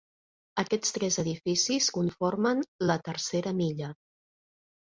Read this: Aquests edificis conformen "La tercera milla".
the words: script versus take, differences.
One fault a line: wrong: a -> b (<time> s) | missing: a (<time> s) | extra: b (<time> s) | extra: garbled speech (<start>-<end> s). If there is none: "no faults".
extra: tres (1.0 s)